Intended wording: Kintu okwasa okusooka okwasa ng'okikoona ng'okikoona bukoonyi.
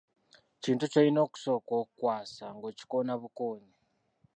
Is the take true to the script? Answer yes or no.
no